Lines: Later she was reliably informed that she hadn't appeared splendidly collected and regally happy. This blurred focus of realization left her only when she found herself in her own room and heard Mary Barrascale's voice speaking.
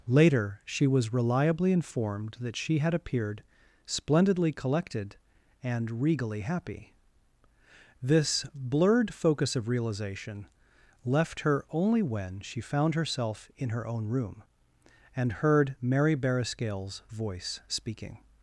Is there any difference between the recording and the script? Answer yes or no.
yes